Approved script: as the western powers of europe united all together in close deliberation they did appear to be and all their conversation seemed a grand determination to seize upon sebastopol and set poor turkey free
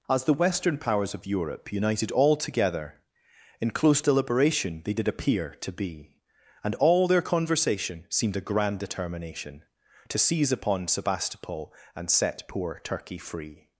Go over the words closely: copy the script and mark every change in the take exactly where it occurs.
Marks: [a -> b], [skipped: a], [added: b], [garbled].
as the western powers of europe united all together in close deliberation they did appear to be and all their conversation seemed a grand determination to seize upon sebastopol and set poor turkey free